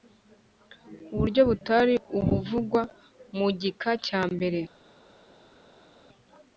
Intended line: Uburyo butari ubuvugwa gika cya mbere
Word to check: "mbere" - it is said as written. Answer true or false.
true